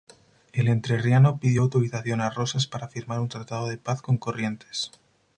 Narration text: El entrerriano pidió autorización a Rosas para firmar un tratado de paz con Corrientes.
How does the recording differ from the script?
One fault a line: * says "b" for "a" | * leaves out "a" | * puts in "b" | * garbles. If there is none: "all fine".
all fine